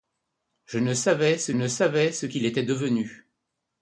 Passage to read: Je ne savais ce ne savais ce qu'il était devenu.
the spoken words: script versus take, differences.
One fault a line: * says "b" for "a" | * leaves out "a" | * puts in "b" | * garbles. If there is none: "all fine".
all fine